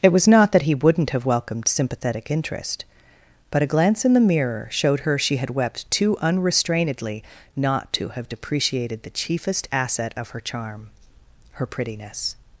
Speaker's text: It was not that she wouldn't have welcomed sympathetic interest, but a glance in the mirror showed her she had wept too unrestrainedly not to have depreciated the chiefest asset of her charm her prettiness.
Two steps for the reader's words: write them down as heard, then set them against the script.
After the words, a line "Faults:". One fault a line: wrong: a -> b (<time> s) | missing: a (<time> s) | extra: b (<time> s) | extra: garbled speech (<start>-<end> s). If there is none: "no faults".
It was not that he wouldn't have welcomed sympathetic interest, but a glance in the mirror showed her she had wept too unrestrainedly not to have depreciated the chiefest asset of her charm her prettiness.
Faults:
wrong: she -> he (0.6 s)